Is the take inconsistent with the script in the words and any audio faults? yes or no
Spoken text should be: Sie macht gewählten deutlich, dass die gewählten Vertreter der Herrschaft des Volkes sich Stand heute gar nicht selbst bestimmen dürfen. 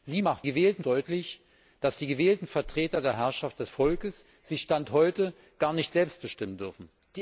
no